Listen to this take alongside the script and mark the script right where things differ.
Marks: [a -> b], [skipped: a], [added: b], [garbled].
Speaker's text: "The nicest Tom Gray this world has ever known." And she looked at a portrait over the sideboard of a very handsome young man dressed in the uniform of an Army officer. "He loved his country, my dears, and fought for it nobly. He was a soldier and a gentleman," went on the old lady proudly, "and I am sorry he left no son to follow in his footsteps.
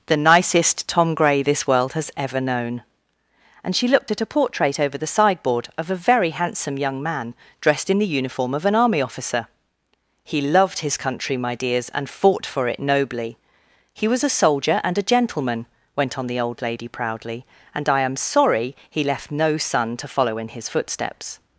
"The nicest Tom Gray this world has ever known." And she looked at a portrait over the sideboard of a very handsome young man dressed in the uniform of an Army officer. "He loved his country, my dears, and fought for it nobly. He was a soldier and a gentleman," went on the old lady proudly, "and I am sorry he left no son to follow in his footsteps.